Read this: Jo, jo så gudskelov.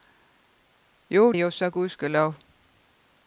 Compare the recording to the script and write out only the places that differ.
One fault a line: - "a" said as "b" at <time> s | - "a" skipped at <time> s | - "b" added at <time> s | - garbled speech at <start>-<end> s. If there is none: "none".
none